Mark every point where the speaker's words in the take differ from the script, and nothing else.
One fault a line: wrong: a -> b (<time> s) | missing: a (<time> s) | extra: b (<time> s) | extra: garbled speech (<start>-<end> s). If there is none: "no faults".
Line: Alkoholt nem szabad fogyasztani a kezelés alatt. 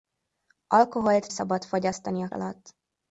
missing: nem (1.3 s)
missing: kezelés (2.3 s)